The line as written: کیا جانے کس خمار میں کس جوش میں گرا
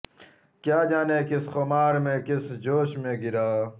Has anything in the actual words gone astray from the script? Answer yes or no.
no